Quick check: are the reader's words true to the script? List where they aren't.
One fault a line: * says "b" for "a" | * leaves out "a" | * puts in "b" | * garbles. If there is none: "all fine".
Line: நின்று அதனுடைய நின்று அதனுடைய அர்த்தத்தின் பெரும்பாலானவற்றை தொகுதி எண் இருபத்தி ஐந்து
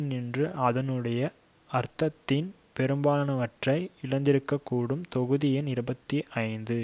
* leaves out "நின்று அதனுடைய"
* puts in "இழந்திருக்கக்கூடும்"